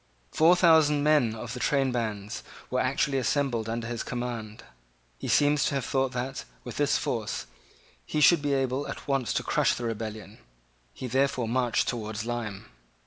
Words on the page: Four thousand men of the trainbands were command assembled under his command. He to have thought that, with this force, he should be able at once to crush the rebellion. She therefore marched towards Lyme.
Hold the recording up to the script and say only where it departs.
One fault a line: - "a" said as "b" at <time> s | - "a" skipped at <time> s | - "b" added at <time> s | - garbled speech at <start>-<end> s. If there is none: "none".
- "command" said as "actually" at 2.8 s
- "seems" added at 5.3 s
- "She" said as "He" at 10.9 s